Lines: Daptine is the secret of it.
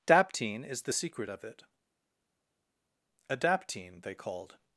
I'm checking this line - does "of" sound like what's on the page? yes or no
yes